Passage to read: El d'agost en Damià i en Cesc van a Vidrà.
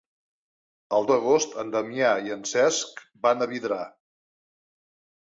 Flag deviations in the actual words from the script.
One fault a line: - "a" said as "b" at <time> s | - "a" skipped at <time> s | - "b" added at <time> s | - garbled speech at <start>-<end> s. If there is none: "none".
none